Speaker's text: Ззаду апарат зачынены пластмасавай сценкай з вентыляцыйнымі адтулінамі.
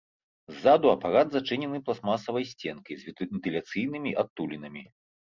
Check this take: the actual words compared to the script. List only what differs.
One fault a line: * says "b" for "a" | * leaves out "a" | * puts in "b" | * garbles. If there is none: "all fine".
all fine